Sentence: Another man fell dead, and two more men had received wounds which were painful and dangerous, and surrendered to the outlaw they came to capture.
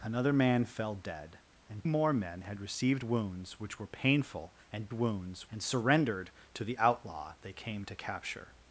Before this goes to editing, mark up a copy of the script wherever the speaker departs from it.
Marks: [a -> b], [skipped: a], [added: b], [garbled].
Another man fell dead, and [skipped: two] more men had received wounds which were painful and [dangerous, -> wounds] and surrendered to the outlaw they came to capture.